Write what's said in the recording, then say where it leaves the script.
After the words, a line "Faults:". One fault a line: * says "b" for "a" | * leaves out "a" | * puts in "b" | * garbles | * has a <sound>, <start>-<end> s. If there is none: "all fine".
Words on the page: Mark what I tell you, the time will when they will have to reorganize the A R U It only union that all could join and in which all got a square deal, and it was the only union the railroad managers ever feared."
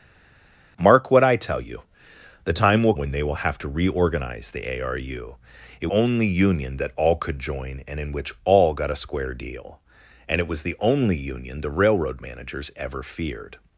Mark what I tell you, the time will when they will have to reorganize the A R U It only union that all could join and in which all got a square deal, and it was the only union the railroad managers ever feared."
Faults:
all fine